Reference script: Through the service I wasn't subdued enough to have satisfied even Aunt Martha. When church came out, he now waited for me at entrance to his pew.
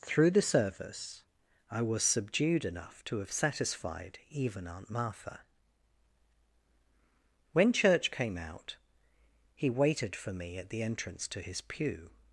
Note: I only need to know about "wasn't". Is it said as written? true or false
false